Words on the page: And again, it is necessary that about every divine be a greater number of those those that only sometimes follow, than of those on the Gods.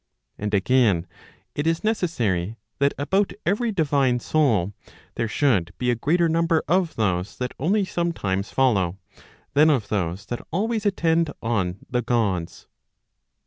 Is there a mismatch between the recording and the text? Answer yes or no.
yes